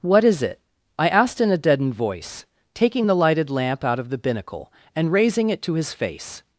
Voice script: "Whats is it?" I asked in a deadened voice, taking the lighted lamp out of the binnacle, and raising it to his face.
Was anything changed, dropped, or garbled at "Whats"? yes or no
yes